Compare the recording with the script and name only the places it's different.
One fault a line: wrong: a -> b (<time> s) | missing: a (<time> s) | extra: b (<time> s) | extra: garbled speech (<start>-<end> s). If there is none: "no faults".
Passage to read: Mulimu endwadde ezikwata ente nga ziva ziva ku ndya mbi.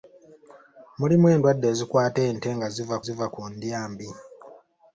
no faults